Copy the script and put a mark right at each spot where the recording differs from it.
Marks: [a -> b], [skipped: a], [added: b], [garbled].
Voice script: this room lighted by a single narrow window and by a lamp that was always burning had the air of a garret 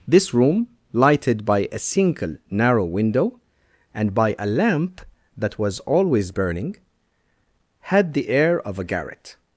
this room lighted by a single narrow window and by a lamp that was always burning had the air of a garret